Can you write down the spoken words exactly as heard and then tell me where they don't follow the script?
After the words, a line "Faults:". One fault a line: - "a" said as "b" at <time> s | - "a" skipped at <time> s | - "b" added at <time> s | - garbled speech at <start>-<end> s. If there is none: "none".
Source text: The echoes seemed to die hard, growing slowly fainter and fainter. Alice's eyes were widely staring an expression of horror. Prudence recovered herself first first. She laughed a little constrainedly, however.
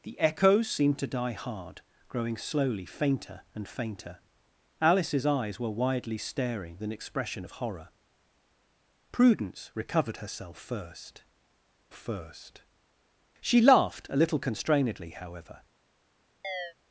The echoes seemed to die hard, growing slowly fainter and fainter. Alice's eyes were widely staring an expression of horror. Prudence recovered herself first first. She laughed a little constrainedly, however.
Faults:
none